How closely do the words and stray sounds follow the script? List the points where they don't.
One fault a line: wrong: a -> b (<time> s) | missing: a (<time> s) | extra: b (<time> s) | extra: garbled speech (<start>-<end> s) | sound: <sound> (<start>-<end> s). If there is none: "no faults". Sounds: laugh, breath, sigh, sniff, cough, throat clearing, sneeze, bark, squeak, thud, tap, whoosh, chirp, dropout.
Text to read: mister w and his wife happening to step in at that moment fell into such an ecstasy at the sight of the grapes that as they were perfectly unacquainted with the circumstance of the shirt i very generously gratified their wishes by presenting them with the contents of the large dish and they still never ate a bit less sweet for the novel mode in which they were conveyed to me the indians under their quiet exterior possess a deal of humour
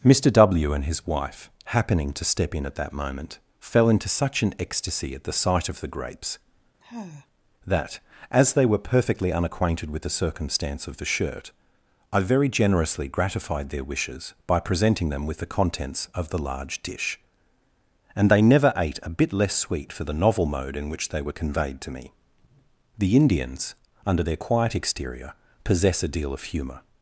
sound: sigh (6.8-7.3 s)
missing: still (18.4 s)